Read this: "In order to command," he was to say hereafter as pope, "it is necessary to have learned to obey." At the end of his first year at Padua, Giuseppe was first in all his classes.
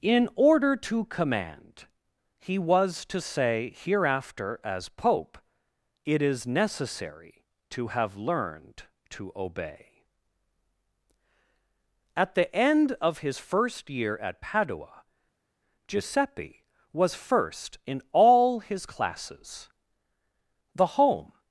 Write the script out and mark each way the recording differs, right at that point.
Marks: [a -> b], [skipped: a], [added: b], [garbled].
"In order to command," he was to say hereafter as pope, "it is necessary to have learned to obey." At the end of his first year at Padua, Giuseppe was first in all his classes. [added: The home]